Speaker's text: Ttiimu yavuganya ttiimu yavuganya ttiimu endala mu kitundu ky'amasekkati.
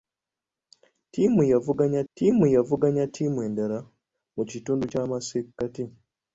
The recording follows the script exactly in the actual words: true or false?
true